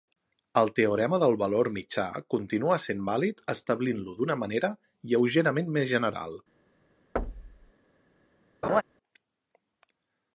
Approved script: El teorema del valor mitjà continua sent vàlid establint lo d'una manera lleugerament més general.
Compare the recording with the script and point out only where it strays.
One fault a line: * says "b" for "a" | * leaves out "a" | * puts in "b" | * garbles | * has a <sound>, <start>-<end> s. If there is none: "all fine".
* has a thud, 7.2-7.7 s
* has a laugh, 8.6-8.8 s